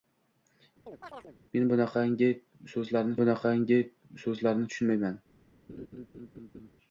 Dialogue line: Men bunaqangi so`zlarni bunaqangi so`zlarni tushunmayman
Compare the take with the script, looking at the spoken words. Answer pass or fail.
pass